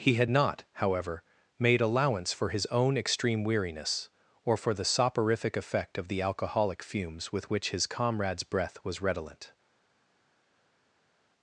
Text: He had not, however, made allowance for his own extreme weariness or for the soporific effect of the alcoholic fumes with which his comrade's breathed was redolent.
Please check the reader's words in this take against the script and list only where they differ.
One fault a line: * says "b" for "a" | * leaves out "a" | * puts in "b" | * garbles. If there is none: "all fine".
* says "breath" for "breathed"